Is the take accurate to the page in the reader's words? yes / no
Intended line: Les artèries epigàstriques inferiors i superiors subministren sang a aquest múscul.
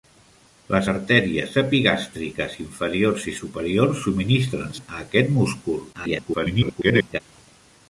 no